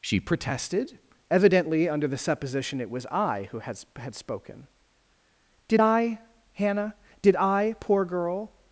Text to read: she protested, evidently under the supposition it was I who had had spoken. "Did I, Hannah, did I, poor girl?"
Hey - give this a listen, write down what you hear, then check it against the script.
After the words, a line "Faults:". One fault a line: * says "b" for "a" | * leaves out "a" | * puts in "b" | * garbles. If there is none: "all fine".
she protested, evidently under the supposition it was I who had had spoken. "Did I, Hannah, did I, poor girl?"
Faults:
all fine